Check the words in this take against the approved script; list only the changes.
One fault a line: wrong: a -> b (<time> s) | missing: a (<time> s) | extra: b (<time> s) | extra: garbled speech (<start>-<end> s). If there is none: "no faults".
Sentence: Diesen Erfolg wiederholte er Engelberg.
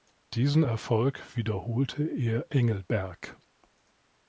no faults